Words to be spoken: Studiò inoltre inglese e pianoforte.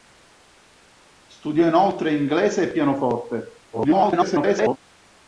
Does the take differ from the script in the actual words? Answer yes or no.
yes